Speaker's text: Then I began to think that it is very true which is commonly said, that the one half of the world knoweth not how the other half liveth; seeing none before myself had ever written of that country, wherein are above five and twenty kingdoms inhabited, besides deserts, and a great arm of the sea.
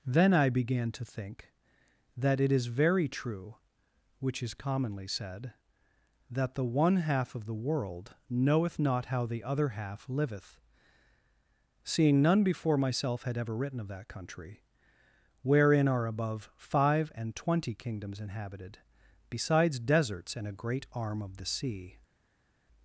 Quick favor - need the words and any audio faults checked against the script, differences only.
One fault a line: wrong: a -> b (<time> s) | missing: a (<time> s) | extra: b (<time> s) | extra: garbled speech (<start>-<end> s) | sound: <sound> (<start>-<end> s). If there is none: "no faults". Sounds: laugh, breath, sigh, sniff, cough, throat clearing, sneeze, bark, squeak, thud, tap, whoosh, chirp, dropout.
no faults